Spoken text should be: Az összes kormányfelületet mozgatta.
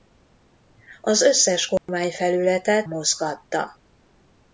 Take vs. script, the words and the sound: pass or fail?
fail